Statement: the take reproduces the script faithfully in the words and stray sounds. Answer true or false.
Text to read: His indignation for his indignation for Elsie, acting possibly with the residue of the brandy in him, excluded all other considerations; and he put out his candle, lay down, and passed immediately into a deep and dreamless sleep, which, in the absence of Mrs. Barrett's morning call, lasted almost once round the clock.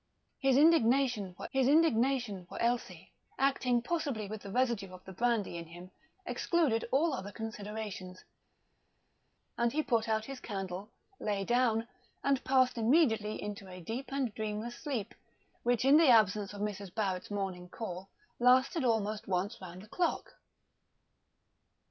true